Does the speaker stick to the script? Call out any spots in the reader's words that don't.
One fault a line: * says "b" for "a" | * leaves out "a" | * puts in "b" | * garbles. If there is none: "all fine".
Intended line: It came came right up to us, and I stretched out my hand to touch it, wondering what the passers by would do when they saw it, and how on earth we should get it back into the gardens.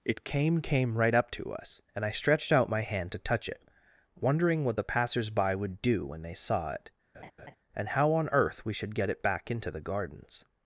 all fine